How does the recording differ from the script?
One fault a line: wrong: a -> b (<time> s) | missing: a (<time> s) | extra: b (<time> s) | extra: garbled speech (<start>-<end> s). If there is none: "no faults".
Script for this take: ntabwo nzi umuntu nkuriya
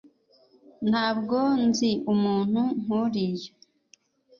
no faults